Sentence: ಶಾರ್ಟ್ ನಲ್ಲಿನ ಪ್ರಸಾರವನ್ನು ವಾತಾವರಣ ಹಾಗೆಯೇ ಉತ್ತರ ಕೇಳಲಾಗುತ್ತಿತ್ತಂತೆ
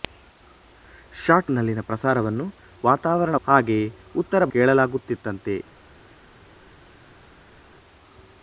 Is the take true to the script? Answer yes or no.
yes